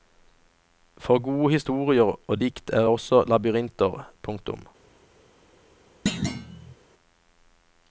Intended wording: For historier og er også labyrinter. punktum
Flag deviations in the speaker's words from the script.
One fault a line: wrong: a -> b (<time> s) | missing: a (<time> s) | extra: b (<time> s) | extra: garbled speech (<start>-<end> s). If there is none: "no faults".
extra: gode (1.2 s)
extra: dikt (2.4 s)